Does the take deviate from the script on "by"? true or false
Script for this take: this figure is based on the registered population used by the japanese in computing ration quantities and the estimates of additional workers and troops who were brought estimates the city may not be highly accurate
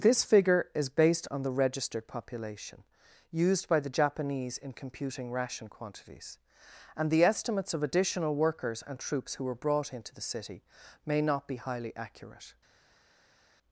false